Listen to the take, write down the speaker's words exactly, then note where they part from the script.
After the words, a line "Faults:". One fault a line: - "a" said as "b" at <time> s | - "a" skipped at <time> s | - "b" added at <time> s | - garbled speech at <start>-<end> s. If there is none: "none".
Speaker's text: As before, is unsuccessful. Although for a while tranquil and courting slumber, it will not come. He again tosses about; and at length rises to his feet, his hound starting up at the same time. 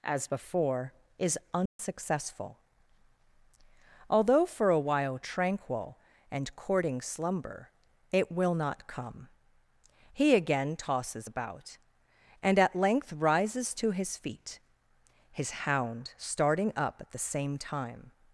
As before, is unsuccessful. Although for a while tranquil and courting slumber, it will not come. He again tosses about; and at length rises to his feet, his hound starting up at the same time.
Faults:
none